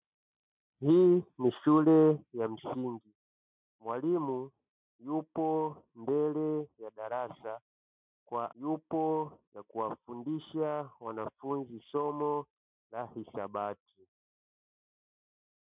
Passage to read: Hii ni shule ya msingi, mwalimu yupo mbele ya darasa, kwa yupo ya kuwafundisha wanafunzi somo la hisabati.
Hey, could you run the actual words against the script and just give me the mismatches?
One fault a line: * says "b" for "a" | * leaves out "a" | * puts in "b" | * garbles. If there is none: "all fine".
all fine